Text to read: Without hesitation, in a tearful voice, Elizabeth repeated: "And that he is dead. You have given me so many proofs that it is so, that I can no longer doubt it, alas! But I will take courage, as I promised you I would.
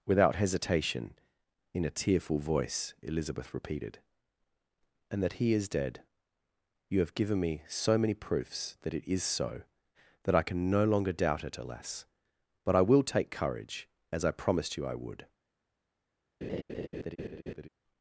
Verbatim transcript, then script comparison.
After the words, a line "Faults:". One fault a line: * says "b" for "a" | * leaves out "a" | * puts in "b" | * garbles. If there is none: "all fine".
Without hesitation, in a tearful voice, Elizabeth repeated: "And that he is dead. You have given me so many proofs that it is so, that I can no longer doubt it, alas! But I will take courage, as I promised you I would.
Faults:
all fine